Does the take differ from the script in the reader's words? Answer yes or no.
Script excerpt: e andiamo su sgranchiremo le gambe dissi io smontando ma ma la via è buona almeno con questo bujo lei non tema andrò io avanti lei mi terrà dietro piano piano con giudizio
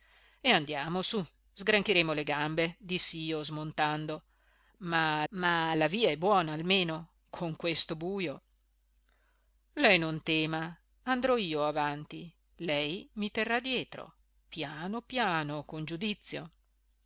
no